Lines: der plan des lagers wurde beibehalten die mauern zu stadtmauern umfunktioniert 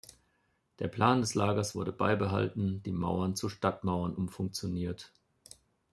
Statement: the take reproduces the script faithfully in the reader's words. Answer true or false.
true